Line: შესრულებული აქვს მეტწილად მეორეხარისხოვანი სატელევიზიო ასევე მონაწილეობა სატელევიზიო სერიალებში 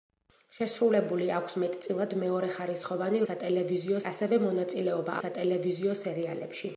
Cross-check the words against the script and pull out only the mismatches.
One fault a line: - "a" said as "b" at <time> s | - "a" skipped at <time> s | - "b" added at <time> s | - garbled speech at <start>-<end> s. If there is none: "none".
none